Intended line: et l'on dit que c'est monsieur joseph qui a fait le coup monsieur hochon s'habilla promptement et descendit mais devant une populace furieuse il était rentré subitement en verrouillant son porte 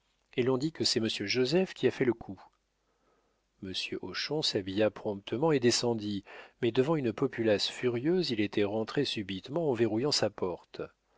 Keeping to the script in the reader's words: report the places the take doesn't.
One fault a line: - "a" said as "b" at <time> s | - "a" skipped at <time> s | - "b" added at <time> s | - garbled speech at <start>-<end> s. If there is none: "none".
- "son" said as "sa" at 10.1 s